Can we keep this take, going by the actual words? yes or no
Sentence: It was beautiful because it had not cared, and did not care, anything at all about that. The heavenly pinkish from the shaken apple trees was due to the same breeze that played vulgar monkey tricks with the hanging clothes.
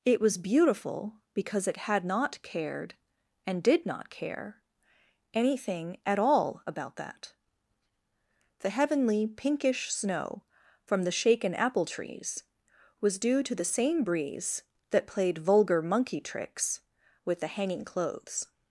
no